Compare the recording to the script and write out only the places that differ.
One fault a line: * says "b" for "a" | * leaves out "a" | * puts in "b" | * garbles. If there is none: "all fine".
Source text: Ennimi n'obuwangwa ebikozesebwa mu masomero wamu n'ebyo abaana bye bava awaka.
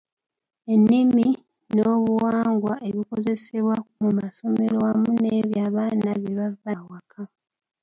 all fine